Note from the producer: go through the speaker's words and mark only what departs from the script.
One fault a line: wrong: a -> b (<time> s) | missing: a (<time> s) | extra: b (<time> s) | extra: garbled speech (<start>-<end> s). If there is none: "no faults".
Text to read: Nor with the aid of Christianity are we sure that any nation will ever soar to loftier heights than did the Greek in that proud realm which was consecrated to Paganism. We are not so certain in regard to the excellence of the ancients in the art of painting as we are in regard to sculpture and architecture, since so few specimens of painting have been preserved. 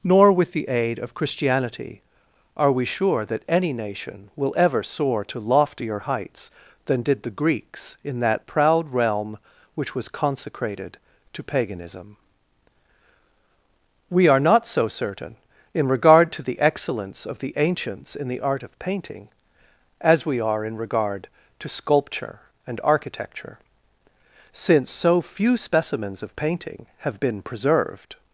wrong: Greek -> Greeks (7.3 s)